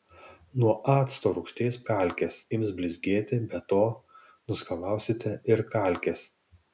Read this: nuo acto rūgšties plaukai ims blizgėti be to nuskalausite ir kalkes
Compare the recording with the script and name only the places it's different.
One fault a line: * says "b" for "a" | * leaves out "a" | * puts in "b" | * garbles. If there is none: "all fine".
* says "kalkes" for "plaukai"